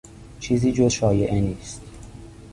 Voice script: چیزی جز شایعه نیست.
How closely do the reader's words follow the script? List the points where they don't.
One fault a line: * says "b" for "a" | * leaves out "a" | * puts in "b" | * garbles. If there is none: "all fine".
all fine